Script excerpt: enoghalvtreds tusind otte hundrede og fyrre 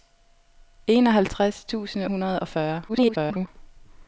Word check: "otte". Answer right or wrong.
wrong